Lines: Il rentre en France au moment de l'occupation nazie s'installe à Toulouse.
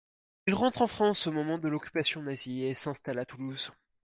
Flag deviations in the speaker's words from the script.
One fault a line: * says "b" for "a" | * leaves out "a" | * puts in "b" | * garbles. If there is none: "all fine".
* puts in "et"